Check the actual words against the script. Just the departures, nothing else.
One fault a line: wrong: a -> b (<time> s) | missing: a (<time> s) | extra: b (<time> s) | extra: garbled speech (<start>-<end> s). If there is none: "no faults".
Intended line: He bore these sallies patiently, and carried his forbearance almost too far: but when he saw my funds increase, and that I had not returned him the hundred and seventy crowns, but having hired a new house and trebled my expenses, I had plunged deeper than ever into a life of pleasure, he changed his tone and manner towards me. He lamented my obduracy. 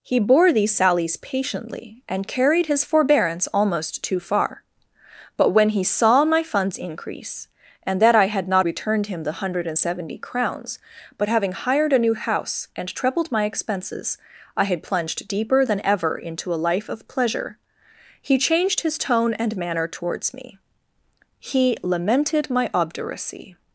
no faults